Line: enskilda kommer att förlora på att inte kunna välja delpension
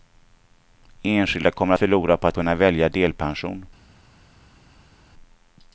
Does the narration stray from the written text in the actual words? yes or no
yes